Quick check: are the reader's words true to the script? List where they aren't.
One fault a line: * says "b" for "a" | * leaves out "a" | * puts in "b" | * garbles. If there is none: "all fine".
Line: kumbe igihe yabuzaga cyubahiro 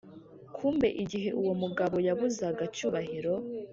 * puts in "uwo mugabo"